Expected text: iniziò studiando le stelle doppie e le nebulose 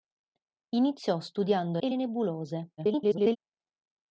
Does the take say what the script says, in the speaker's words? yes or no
no